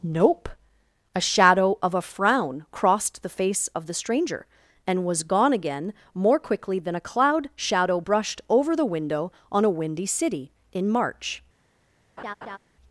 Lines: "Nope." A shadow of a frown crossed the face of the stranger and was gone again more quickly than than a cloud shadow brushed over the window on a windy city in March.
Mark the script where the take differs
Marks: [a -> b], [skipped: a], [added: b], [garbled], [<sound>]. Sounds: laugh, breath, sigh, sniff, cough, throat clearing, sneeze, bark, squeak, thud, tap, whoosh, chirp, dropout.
"Nope." A shadow of a frown crossed the face of the stranger and was gone again more quickly than [skipped: than] a cloud shadow brushed over the window on a windy city in March. [laugh]